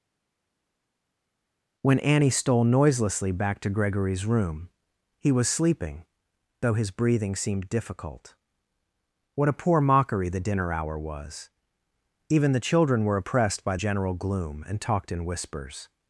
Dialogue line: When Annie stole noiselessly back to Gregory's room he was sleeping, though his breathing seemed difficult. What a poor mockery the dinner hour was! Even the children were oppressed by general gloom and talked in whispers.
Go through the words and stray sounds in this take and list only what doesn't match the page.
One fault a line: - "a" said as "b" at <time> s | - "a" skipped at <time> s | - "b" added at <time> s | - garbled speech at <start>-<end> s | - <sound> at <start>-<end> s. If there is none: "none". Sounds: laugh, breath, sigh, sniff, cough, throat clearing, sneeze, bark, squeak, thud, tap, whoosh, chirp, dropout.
none